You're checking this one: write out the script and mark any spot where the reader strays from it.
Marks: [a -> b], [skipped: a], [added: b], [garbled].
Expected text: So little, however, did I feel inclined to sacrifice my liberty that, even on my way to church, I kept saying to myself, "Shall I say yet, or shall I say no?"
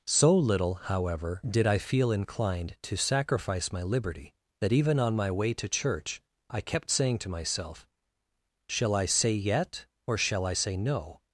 So little, however, did I feel inclined to sacrifice my liberty that, even on my way to church, I kept saying to myself, "Shall I say yet, or shall I say no?"